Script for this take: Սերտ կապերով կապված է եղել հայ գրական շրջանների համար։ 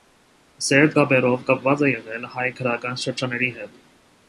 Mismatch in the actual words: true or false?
true